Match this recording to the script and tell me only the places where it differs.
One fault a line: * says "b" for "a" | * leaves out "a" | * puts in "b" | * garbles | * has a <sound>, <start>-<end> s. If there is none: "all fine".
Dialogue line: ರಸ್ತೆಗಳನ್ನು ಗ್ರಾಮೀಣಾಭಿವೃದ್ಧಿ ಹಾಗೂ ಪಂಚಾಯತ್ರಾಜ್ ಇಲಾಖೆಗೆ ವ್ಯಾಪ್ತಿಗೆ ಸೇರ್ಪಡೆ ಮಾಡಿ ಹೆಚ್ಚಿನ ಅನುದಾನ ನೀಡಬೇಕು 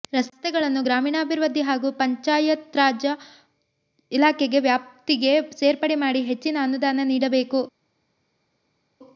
all fine